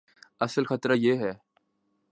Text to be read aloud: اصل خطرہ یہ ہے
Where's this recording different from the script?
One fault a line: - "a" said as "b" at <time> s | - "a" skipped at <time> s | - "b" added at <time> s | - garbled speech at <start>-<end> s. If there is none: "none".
none